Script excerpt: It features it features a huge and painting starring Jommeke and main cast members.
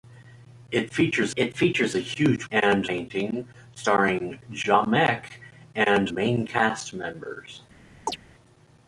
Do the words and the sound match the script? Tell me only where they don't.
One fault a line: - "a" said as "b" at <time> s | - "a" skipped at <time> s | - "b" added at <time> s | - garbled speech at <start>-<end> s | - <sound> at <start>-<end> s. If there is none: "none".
- chirp at 8.1-8.2 s